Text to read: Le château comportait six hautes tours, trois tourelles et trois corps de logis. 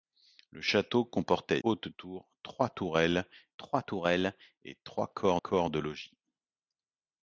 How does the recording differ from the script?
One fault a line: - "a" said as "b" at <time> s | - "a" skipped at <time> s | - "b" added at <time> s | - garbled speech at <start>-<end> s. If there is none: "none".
- "six" skipped at 1.6 s
- "trois tourelles" added at 3.6 s
- "corps" added at 5.3 s